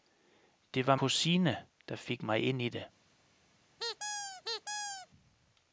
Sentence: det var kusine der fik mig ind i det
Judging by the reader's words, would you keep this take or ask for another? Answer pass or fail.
pass